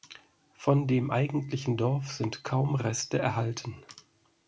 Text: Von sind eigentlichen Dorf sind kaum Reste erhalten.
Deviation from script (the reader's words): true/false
true